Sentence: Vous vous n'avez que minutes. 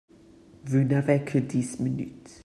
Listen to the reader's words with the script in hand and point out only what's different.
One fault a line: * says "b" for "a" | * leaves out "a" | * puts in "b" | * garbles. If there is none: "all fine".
* leaves out "vous"
* puts in "dix"